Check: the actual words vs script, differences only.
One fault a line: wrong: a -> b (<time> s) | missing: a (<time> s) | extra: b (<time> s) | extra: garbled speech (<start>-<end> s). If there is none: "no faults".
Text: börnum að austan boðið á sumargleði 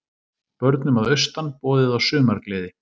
no faults